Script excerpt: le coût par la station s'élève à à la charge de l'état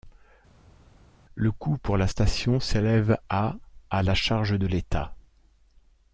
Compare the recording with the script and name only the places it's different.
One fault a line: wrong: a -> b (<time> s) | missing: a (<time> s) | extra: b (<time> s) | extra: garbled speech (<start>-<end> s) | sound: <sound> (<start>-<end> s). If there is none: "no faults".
wrong: par -> pour (1.8 s)